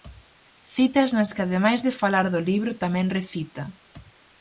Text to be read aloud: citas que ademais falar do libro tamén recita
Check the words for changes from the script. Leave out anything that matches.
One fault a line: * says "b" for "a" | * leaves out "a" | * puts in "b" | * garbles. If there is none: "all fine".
* puts in "nas"
* puts in "de"